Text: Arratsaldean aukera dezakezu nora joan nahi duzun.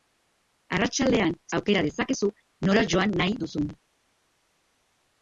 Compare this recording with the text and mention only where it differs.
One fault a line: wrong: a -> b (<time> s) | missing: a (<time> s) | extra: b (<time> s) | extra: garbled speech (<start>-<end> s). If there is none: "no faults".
no faults